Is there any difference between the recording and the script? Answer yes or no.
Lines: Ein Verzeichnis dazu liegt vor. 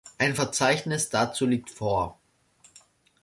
no